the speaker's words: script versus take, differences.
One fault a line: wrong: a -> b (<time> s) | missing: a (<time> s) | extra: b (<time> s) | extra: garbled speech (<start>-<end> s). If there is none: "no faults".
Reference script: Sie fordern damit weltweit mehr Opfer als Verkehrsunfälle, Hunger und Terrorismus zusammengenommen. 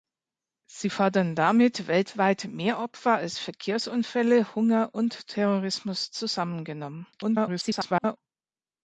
extra: garbled speech (7.1-8.2 s)